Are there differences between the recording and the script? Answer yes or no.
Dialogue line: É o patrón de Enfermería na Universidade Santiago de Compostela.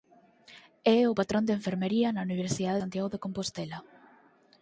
no